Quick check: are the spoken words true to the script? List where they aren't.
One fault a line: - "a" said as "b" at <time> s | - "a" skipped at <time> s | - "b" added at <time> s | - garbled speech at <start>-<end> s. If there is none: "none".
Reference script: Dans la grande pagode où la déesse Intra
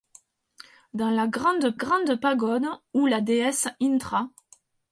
- "grande" added at 1.7 s